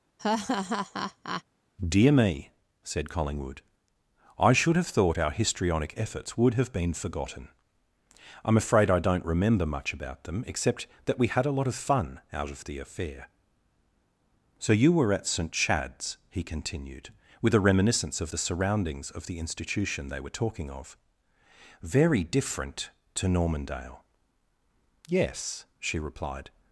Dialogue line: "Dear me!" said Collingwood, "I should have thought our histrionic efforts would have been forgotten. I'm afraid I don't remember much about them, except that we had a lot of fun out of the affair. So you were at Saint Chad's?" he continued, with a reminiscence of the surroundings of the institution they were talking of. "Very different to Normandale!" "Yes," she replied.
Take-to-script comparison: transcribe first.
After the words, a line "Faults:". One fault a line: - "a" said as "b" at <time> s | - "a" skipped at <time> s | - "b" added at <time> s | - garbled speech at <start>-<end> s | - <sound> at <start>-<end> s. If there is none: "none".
"Dear me!" said Collingwood, "I should have thought our histrionic efforts would have been forgotten. I'm afraid I don't remember much about them, except that we had a lot of fun out of the affair. So you were at Saint Chad's?" he continued, with a reminiscence of the surroundings of the institution they were talking of. "Very different to Normandale!" "Yes," she replied.
Faults:
- laugh at 0.2-1.4 s